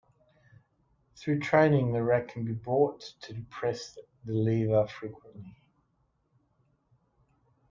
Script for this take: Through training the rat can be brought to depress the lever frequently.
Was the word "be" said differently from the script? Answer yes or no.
no